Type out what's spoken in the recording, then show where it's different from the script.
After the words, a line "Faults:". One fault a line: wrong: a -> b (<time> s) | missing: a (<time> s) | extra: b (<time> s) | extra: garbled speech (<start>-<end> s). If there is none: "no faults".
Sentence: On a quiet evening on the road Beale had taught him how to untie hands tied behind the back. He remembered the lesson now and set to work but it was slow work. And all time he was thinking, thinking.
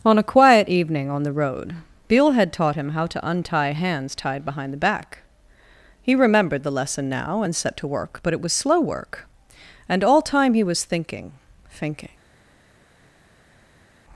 On a quiet evening on the road Beale had taught him how to untie hands tied behind the back. He remembered the lesson now and set to work but it was slow work. And all time he was thinking, thinking.
Faults:
no faults